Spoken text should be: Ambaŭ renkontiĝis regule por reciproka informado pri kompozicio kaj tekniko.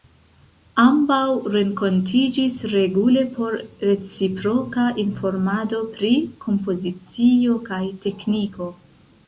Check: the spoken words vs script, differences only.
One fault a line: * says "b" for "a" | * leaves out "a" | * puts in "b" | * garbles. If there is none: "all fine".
all fine